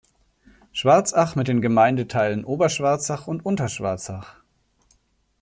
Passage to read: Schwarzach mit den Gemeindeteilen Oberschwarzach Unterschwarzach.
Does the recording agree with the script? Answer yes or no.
no